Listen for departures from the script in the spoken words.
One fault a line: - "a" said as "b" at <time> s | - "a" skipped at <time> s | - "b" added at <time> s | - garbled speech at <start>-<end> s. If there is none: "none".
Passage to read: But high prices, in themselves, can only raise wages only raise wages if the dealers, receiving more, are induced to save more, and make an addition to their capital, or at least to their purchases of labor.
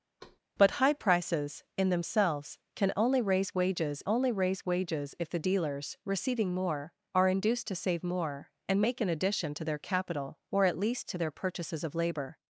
none